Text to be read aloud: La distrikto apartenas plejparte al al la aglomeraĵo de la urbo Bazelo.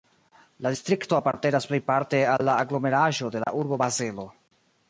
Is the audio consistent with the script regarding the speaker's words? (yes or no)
no